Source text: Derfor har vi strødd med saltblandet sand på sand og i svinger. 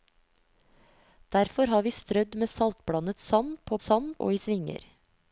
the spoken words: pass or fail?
pass